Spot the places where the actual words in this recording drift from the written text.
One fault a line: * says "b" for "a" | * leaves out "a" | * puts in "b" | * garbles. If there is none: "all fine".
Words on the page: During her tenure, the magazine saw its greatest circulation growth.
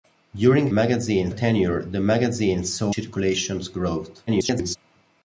* says "magazine" for "her"
* leaves out "its greatest"
* garbles